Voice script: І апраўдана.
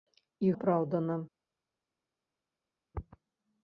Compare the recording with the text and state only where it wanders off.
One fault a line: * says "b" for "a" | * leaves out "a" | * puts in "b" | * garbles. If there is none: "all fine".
all fine